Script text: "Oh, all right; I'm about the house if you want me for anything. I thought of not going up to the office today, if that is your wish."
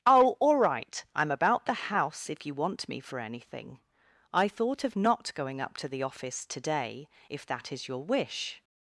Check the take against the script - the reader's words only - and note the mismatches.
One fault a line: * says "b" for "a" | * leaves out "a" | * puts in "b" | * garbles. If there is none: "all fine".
all fine